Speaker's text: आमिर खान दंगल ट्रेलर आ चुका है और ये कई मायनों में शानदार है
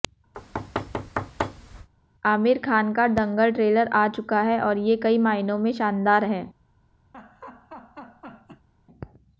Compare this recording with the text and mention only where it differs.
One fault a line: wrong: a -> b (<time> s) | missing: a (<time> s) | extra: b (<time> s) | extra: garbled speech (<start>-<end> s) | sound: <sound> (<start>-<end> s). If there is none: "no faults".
sound: thud (0.3-1.9 s)
extra: का (2.9 s)
sound: laugh (7.1-8.7 s)